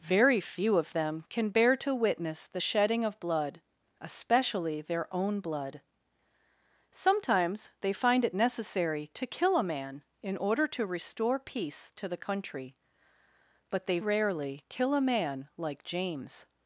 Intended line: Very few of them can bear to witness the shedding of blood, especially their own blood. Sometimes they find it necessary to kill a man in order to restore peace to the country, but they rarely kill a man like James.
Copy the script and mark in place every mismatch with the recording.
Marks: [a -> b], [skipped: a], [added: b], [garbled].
Very few of them can bear to witness the shedding of blood, especially their own blood. Sometimes they find it necessary to kill a man in order to restore peace to the country, but they rarely kill a man like James.